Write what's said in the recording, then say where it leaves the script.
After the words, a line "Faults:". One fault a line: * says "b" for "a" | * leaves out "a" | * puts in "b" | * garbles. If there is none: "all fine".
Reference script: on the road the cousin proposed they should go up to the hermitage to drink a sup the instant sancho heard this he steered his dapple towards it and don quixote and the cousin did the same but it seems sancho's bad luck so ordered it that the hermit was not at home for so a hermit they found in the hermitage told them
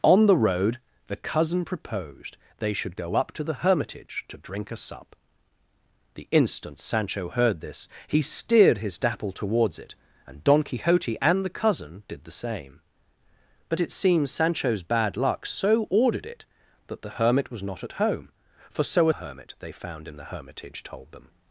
on the road the cousin proposed they should go up to the hermitage to drink a sup the instant sancho heard this he steered his dapple towards it and don quixote and the cousin did the same but it seems sancho's bad luck so ordered it that the hermit was not at home for so a hermit they found in the hermitage told them
Faults:
all fine